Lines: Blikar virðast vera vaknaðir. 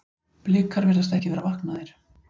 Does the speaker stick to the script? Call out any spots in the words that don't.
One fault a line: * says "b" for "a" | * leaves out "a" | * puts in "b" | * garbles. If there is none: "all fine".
* puts in "ekki"